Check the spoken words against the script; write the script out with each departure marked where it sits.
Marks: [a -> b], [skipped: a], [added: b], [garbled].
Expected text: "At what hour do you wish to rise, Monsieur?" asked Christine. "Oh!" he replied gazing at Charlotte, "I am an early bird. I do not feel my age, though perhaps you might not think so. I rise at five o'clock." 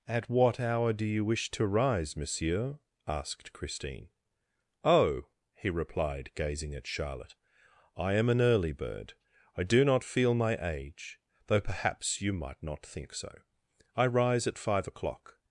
"At what hour do you wish to rise, Monsieur?" asked Christine. "Oh!" he replied gazing at Charlotte, "I am an early bird. I do not feel my age, though perhaps you might not think so. I rise at five o'clock."